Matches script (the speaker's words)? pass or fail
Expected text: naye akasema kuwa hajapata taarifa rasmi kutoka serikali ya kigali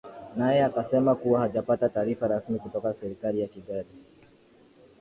pass